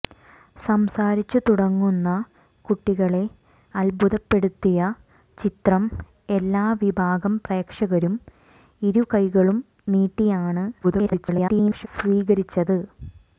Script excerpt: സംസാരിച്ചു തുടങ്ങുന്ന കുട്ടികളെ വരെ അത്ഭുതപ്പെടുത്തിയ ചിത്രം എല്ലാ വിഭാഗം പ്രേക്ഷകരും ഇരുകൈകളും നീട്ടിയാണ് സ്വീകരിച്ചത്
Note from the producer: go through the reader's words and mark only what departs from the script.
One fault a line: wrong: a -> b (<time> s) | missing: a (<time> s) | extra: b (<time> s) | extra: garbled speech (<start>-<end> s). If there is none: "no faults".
missing: വരെ (3.2 s)
extra: garbled speech (10.8-11.9 s)